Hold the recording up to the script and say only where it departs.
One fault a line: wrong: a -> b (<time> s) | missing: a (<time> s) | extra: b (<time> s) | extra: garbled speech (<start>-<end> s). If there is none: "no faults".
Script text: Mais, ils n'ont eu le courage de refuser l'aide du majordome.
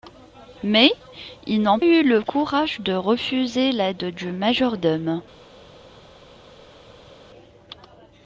no faults